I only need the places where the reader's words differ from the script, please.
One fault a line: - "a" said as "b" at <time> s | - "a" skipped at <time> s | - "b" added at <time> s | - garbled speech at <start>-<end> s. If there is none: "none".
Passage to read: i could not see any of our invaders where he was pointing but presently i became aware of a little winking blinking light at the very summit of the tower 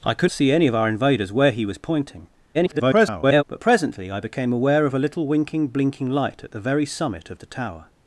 - "not" skipped at 0.3 s
- garbled speech at 2.5-3.4 s